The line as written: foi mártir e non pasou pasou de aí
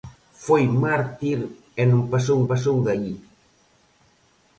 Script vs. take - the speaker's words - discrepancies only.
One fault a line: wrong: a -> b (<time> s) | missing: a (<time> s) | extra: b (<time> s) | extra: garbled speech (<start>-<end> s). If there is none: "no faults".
no faults